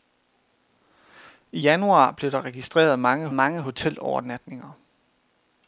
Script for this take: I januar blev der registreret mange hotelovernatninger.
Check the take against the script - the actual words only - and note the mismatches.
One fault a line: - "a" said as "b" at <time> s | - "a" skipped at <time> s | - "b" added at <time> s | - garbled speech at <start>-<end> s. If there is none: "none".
- "mange" added at 3.3 s